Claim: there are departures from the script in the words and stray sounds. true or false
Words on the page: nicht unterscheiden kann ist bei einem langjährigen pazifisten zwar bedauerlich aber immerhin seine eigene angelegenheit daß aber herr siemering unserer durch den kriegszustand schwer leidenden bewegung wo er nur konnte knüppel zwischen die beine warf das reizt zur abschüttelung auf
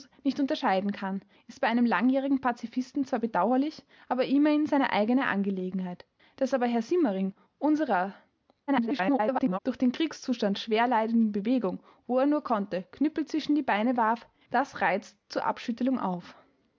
true